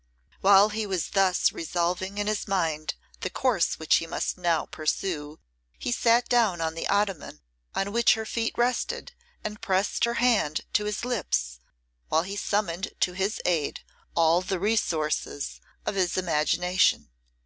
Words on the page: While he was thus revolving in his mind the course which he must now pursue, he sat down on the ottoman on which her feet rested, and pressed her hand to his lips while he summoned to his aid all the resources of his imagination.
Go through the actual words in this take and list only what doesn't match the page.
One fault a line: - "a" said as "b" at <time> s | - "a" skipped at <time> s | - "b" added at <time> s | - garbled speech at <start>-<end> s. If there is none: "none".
none